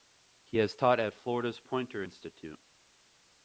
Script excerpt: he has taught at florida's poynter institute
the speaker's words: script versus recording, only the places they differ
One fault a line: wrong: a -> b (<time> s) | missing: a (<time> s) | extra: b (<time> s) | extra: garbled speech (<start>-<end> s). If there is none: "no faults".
no faults